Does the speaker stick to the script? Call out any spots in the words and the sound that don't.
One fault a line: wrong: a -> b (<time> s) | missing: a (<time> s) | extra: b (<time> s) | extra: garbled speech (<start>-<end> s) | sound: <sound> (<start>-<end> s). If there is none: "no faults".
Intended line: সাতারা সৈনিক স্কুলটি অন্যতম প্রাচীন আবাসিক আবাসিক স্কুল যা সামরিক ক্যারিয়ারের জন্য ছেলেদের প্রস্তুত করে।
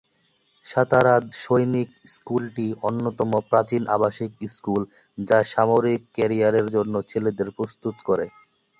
missing: আবাসিক (4.3 s)